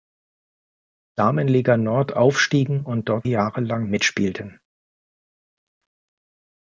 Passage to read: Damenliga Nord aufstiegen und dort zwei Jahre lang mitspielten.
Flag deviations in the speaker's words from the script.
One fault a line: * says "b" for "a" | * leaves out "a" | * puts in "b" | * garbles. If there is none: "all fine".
* leaves out "zwei"